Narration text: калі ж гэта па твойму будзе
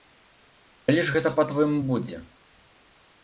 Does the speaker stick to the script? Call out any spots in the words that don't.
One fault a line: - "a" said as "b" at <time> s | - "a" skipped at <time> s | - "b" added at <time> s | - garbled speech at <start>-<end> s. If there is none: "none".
none